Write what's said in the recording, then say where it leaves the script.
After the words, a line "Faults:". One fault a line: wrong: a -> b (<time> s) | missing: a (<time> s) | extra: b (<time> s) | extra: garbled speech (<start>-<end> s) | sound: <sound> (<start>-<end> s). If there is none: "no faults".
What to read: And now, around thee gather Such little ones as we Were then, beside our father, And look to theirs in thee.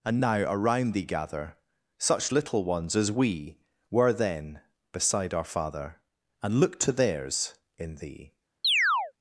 And now, around thee gather Such little ones as we Were then, beside our father, And look to theirs in thee.
Faults:
sound: chirp (8.6-9.1 s)